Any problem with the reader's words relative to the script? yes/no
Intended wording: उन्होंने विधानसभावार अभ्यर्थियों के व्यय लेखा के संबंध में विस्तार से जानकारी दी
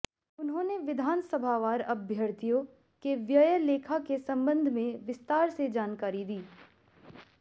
no